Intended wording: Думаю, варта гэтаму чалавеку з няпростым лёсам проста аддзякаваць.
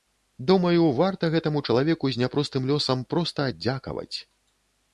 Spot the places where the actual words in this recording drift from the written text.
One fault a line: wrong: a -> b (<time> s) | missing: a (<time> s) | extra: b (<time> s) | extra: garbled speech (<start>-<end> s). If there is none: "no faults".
no faults